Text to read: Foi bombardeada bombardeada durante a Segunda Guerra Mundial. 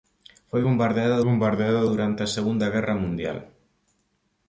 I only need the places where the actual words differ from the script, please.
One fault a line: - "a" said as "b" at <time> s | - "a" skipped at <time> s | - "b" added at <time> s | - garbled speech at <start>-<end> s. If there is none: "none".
none